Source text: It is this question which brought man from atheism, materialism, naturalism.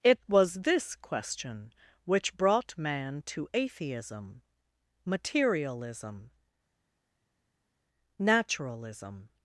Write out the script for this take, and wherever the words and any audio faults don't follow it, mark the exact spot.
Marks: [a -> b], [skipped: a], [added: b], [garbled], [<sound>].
It [is -> was] this question which brought man [from -> to] atheism, materialism, naturalism.